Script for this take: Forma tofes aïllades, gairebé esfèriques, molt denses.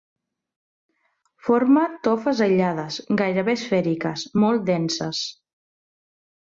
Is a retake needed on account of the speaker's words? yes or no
no